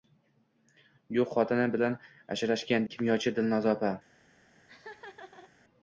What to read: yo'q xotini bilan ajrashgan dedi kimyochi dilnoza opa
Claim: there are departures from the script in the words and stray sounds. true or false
true